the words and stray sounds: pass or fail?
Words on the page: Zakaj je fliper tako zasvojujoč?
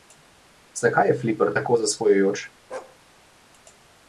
fail